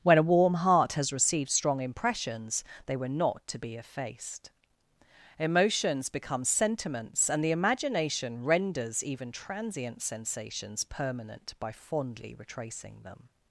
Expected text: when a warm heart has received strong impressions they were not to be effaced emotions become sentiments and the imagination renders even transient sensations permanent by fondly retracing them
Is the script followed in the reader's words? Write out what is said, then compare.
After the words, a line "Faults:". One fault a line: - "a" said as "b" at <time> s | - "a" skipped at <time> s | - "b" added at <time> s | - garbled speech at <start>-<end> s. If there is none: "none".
when a warm heart has received strong impressions they were not to be effaced emotions become sentiments and the imagination renders even transient sensations permanent by fondly retracing them
Faults:
none